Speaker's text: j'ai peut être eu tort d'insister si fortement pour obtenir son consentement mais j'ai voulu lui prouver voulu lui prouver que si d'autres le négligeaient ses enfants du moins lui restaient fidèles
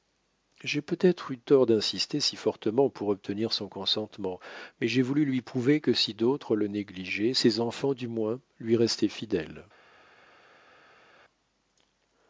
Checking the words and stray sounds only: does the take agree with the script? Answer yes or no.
no